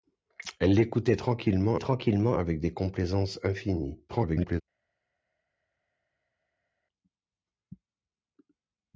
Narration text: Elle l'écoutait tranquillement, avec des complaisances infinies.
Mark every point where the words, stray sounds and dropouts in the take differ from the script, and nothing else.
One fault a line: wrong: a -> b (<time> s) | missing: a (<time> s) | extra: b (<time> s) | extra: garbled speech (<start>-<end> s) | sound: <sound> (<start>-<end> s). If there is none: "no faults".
extra: tranquillement (1.8 s)
extra: garbled speech (4.1-4.6 s)